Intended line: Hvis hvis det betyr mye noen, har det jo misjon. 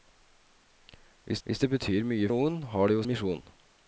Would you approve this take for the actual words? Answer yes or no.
yes